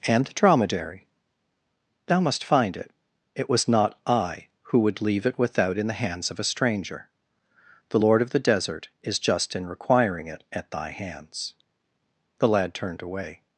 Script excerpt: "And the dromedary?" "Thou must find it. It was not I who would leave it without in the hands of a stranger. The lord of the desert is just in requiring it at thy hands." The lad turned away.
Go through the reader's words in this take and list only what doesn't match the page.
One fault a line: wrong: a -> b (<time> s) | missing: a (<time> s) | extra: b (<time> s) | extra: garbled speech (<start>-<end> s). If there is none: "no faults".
no faults